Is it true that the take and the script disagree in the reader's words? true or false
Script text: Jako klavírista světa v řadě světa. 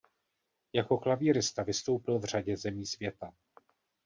true